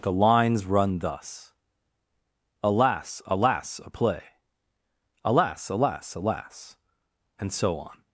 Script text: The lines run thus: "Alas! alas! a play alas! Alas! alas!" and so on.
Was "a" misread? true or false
false